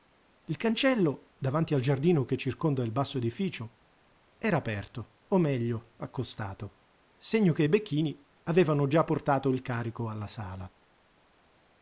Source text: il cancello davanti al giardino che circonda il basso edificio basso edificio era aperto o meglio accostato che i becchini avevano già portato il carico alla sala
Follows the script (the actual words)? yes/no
no